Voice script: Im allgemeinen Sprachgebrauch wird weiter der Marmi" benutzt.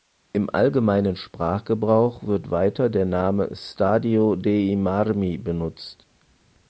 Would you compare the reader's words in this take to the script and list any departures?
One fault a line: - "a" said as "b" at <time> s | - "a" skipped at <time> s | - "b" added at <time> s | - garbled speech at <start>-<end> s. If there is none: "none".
- "Name Stadio dei" added at 3.0 s